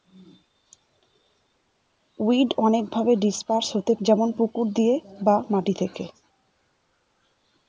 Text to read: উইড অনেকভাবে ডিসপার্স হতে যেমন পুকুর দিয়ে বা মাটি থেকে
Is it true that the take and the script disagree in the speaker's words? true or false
false